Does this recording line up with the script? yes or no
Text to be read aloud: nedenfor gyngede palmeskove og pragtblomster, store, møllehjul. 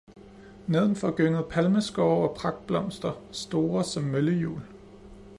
no